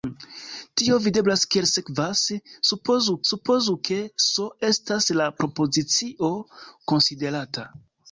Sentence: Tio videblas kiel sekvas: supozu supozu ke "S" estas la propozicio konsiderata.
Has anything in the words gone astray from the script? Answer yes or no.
no